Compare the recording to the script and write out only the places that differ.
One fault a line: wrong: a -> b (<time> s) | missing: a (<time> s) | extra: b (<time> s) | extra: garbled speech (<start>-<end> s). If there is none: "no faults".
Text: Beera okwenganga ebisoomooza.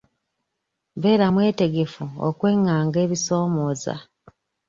extra: mwetegefu (1.3 s)